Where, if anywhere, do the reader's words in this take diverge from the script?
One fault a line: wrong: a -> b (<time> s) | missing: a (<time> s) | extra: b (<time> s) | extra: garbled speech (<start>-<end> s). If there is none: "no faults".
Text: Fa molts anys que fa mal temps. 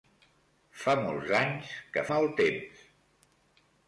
missing: fa (2.0 s)